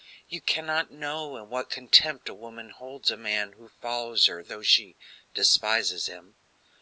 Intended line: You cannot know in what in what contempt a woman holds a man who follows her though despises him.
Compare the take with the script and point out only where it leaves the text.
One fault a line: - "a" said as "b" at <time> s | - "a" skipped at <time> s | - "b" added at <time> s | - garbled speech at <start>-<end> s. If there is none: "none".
- "in what" skipped at 1.7 s
- "she" added at 4.6 s